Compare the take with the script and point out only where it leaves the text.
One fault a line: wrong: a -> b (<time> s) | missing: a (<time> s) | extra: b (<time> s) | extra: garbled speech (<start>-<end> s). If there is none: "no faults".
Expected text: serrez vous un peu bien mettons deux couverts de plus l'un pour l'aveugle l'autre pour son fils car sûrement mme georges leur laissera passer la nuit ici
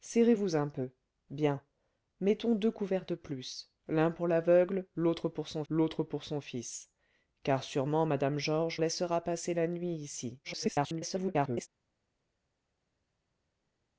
extra: l'autre pour son (5.7 s)
missing: leur (8.8 s)
extra: garbled speech (10.4-11.7 s)